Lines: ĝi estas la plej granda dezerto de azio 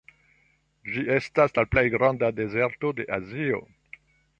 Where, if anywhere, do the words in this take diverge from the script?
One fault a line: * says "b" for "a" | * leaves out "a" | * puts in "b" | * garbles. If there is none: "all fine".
all fine